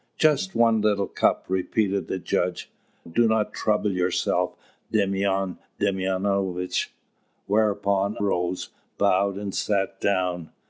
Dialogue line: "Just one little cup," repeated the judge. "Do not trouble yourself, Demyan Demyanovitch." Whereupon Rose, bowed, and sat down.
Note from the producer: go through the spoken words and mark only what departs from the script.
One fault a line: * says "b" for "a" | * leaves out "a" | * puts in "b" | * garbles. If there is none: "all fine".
all fine